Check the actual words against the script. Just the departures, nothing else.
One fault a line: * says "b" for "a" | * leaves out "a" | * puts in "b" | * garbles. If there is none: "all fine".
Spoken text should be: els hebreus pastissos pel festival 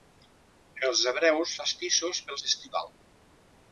all fine